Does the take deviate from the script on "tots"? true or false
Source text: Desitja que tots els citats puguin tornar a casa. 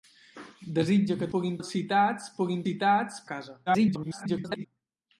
true